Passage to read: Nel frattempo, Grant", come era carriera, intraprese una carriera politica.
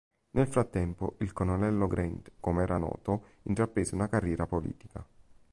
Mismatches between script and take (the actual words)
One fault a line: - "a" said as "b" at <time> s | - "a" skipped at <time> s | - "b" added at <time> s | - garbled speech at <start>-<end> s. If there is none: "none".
- "il Colonnello" added at 1.2 s
- "carriera" said as "noto" at 2.8 s